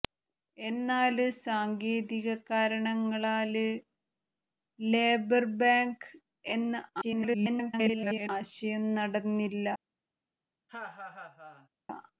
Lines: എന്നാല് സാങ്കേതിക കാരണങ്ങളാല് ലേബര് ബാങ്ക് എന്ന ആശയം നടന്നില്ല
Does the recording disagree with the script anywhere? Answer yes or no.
yes